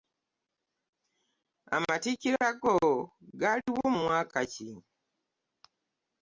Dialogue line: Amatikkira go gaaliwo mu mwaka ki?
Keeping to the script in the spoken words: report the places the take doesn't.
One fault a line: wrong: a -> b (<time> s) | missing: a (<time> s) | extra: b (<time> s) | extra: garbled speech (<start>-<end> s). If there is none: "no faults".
no faults